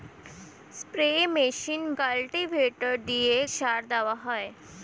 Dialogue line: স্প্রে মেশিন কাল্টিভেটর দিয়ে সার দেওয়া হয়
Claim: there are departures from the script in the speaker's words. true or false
false